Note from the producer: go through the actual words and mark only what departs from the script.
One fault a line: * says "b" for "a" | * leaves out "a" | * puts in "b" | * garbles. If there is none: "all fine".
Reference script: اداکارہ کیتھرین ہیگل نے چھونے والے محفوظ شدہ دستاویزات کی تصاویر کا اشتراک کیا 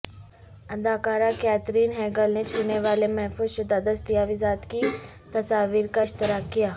all fine